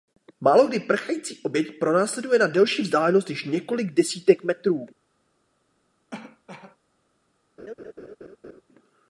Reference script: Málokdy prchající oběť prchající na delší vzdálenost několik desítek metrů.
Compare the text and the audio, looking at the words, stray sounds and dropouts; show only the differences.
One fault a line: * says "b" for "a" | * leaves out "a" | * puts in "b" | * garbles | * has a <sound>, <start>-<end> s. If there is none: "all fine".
* says "pronásleduje" for "prchající"
* puts in "než"
* has a cough, 6.1-6.8 s
* has a laugh, 7.6-8.6 s